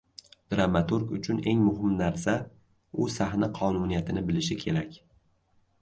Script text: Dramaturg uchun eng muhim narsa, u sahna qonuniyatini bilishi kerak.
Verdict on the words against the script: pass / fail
pass